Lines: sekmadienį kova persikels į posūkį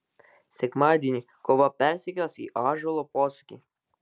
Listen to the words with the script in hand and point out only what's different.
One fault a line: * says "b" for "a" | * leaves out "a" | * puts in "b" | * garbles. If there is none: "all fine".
* puts in "ąžuolo"